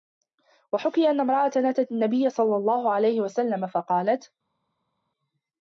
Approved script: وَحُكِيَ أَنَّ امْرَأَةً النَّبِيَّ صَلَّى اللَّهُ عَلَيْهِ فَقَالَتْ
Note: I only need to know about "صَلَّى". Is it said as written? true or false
true